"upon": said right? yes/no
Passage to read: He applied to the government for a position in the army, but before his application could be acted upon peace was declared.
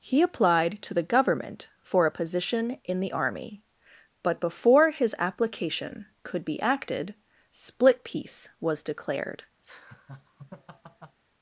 no